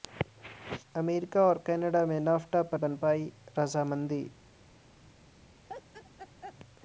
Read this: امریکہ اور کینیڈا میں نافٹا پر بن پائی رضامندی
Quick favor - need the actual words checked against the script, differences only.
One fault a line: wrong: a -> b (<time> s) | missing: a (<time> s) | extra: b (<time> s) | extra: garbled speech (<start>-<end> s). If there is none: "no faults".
no faults